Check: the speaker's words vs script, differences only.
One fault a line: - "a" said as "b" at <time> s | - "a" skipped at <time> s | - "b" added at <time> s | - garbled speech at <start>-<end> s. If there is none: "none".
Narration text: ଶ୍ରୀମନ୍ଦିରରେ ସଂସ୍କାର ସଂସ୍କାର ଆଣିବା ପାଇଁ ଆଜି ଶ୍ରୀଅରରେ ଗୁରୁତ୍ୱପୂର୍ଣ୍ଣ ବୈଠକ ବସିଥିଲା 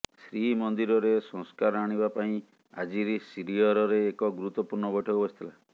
- "ସଂସ୍କାର" skipped at 1.8 s
- "ଏକ" added at 4.1 s